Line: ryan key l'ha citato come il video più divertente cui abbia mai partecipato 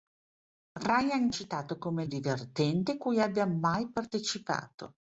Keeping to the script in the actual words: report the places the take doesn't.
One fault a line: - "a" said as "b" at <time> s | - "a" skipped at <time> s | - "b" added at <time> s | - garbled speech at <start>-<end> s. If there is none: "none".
- "key l'ha" skipped at 1.3 s
- "il video più" skipped at 2.0 s